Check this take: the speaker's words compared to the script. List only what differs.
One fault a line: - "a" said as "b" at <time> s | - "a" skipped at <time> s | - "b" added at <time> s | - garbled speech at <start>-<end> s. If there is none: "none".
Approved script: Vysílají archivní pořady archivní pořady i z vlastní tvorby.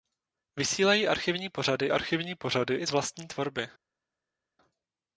none